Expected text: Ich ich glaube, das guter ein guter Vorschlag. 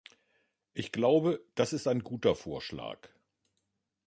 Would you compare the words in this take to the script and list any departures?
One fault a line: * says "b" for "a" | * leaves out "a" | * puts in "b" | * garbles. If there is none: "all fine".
* leaves out "ich"
* says "ist" for "guter"